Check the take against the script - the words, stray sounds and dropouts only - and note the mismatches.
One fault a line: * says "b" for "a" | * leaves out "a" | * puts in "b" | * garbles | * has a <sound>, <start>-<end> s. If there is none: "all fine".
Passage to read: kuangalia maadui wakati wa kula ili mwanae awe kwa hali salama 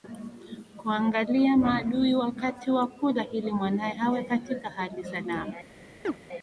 * says "katika" for "kwa"
* has a chirp, 6.0-6.2 s